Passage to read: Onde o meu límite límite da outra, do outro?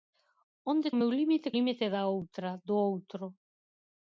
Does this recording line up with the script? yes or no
yes